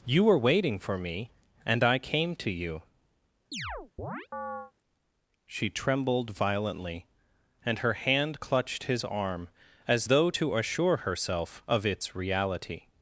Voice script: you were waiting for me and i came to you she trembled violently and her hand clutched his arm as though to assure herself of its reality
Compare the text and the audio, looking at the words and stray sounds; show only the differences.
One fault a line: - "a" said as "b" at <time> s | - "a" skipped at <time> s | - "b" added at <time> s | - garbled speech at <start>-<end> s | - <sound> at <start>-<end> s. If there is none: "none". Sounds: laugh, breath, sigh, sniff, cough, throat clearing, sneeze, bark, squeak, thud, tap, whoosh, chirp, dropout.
- chirp at 3.5-4.7 s